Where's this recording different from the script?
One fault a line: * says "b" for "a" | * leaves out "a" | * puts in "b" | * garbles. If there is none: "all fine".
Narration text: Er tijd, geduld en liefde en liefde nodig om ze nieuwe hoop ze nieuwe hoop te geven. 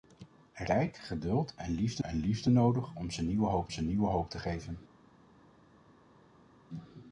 all fine